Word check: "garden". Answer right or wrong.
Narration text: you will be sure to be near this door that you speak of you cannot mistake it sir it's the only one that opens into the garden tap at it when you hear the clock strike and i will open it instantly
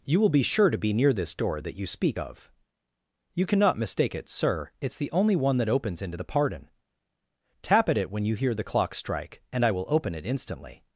wrong